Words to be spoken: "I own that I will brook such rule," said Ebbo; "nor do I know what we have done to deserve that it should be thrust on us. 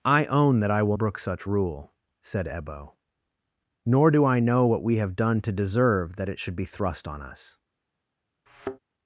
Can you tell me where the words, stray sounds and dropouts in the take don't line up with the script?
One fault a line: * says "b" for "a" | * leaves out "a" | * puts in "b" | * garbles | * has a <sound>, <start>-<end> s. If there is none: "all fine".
* has a thud, 8.5-8.8 s